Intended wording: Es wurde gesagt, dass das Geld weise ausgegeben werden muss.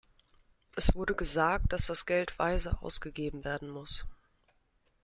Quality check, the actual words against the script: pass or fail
pass